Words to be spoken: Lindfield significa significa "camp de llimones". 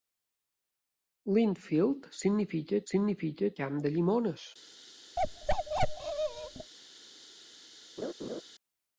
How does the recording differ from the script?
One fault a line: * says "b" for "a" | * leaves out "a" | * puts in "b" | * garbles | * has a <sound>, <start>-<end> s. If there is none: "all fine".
* has a bark, 5.2-6.7 s
* has a laugh, 8.0-8.4 s